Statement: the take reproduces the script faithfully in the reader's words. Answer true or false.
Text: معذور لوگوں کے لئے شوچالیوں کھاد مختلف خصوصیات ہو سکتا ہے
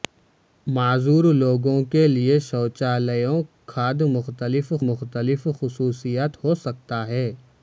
false